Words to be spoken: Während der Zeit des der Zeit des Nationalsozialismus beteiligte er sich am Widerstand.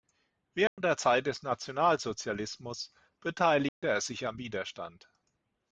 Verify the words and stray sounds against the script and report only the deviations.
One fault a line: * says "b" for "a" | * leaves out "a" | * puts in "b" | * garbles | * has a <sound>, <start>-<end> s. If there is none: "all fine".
* has a dropout, 0.7-0.8 s
* leaves out "der Zeit des"
* has a dropout, 3.7-3.8 s